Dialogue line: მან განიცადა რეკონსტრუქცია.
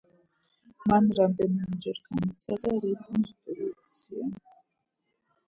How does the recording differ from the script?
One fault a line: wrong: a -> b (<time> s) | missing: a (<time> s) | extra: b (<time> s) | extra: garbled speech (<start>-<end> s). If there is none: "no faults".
extra: რამდენიმეჯერ (1.2 s)